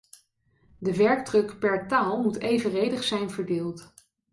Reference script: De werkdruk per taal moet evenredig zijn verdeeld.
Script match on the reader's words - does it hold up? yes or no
yes